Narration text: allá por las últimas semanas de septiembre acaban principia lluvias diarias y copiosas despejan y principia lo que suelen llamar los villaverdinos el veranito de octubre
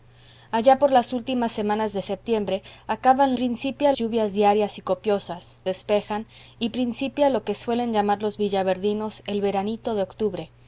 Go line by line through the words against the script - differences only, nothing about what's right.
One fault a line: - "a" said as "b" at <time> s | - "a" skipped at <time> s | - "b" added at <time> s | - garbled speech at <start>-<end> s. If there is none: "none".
none